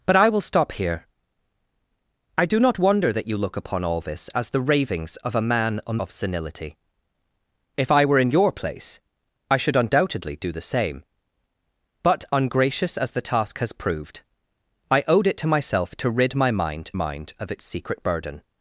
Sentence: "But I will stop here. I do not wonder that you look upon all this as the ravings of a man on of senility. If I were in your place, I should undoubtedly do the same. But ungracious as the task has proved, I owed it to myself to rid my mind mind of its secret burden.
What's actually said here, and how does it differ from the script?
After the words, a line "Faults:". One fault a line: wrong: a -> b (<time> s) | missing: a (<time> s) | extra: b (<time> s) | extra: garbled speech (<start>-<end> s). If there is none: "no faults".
"But I will stop here. I do not wonder that you look upon all this as the ravings of a man on of senility. If I were in your place, I should undoubtedly do the same. But ungracious as the task has proved, I owed it to myself to rid my mind mind of its secret burden.
Faults:
no faults